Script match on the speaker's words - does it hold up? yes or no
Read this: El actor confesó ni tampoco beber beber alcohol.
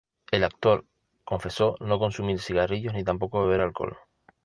no